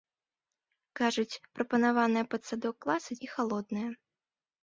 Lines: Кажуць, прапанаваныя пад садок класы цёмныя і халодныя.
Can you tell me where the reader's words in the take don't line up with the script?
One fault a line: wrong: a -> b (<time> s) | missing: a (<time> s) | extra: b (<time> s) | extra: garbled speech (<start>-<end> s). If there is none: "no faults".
missing: цёмныя (3.2 s)